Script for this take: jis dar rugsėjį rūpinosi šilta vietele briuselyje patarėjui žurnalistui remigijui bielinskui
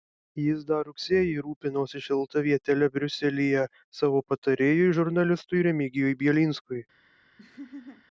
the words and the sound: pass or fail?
fail